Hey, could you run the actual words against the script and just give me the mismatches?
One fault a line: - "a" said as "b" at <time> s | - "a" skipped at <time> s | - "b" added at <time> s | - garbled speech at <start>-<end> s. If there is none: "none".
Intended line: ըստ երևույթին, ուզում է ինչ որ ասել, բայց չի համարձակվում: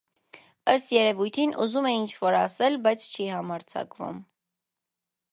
none